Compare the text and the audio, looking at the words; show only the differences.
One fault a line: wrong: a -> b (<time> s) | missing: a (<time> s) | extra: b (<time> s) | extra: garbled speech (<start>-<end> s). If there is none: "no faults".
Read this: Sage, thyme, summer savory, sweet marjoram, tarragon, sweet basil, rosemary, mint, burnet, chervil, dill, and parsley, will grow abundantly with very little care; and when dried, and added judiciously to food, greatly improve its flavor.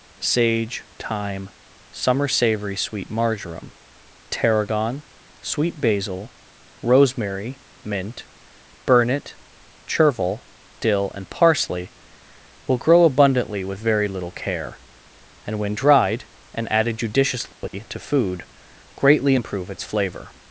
no faults